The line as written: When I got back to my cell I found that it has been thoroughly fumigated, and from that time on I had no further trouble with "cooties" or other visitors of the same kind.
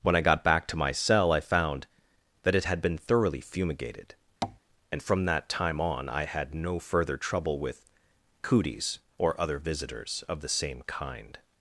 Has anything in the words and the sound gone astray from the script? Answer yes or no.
yes